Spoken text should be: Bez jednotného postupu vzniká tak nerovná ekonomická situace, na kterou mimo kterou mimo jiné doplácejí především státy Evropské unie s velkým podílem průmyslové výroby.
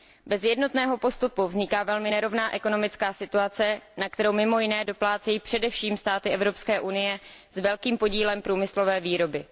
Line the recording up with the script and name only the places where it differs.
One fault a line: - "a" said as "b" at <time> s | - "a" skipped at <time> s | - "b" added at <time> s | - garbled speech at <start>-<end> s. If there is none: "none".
- "tak" said as "velmi" at 1.8 s
- "kterou mimo" skipped at 4.6 s